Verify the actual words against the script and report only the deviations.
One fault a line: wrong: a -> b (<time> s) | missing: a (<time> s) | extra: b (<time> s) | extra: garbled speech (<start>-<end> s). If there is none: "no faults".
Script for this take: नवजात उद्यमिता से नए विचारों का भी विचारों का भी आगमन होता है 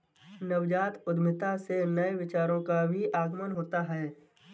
missing: विचारों का भी (3.0 s)